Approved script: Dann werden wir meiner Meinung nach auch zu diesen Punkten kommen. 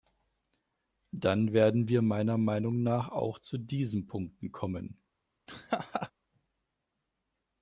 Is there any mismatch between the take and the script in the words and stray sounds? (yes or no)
yes